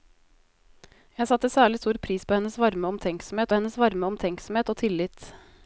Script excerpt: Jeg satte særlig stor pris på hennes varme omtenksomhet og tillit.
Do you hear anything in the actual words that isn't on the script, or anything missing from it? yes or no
yes